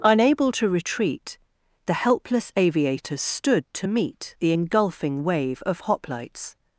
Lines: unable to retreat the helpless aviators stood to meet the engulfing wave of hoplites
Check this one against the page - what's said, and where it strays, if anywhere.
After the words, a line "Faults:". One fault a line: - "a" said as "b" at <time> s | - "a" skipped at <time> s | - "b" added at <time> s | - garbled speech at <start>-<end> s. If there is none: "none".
unable to retreat the helpless aviators stood to meet the engulfing wave of hoplites
Faults:
none